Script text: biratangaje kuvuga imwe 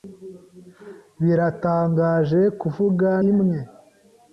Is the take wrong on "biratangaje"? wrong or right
right